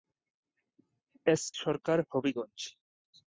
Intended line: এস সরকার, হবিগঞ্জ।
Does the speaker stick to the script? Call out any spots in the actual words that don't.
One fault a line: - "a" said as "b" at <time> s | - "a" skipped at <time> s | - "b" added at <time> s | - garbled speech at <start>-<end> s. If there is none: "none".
none